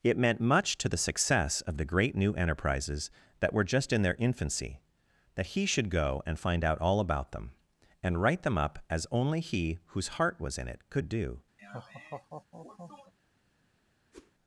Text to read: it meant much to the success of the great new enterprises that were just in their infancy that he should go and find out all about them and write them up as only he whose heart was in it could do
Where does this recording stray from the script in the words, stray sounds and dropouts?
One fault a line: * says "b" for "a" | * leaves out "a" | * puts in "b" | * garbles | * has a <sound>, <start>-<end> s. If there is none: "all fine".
* has a laugh, 11.6-13.1 s
* has a whoosh, 14.1-14.3 s